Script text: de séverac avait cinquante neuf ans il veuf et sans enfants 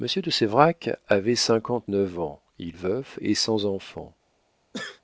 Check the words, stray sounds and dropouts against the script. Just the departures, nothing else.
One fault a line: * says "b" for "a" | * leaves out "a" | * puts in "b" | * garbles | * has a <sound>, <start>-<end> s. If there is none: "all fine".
* has a sneeze, 4.7-5.0 s